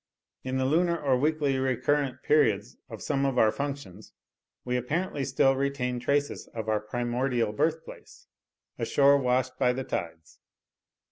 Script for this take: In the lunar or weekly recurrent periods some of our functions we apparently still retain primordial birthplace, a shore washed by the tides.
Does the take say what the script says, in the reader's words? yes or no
no